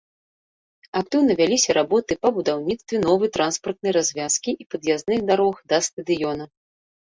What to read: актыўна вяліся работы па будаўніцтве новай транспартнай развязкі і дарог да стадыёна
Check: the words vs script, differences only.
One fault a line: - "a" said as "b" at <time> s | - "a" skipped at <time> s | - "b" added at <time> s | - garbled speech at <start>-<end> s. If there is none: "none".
- "пад'язных" added at 4.7 s